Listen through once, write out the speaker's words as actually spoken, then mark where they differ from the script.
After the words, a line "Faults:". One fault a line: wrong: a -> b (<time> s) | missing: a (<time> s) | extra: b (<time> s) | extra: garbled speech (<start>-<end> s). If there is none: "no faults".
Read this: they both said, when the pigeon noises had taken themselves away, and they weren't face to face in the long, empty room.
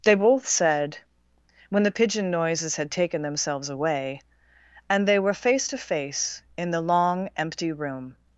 they both said, when the pigeon noises had taken themselves away, and they were face to face in the long, empty room.
Faults:
wrong: weren't -> were (5.2 s)